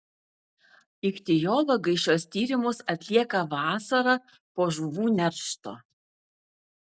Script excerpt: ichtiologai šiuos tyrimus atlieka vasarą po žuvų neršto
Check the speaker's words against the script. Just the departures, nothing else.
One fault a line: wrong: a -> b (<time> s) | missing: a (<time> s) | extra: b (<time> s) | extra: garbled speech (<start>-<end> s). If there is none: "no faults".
no faults